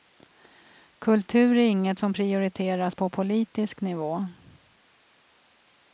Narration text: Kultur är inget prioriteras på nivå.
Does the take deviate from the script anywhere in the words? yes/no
yes